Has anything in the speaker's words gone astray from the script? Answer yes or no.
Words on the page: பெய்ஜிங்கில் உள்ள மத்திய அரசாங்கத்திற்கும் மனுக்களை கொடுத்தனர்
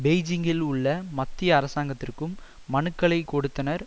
no